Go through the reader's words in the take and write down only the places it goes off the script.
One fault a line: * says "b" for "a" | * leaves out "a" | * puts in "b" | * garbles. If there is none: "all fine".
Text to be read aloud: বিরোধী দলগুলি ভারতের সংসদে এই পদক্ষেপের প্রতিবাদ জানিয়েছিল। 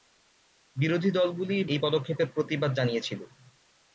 * leaves out "ভারতের সংসদে"